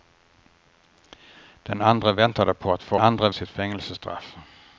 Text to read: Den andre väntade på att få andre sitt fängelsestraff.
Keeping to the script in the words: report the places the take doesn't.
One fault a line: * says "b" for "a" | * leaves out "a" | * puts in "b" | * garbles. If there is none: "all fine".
all fine